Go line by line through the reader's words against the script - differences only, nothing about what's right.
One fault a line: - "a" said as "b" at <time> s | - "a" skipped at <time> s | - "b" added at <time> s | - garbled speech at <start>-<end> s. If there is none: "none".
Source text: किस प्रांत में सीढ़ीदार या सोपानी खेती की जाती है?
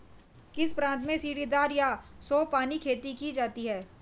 none